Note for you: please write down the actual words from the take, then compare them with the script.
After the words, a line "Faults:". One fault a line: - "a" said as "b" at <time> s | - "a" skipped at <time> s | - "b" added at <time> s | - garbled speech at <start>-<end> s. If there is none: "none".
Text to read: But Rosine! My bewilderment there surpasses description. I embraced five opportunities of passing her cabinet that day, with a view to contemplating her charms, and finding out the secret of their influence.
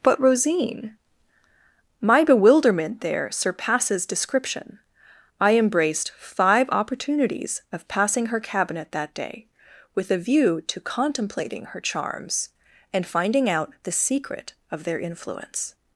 But Rosine! My bewilderment there surpasses description. I embraced five opportunities of passing her cabinet that day, with a view to contemplating her charms, and finding out the secret of their influence.
Faults:
none